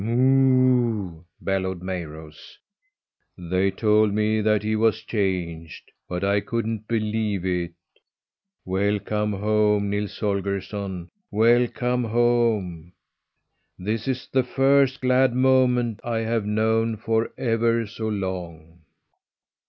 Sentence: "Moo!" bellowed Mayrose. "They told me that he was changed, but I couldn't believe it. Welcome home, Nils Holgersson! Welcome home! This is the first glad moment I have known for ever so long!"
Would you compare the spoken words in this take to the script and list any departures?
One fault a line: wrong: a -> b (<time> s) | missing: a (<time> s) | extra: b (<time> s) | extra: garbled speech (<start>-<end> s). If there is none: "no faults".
no faults